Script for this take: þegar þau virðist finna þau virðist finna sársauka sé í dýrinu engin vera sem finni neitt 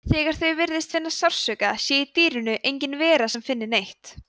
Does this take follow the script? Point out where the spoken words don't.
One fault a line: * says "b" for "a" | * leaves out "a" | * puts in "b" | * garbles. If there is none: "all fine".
* leaves out "þau virðist finna"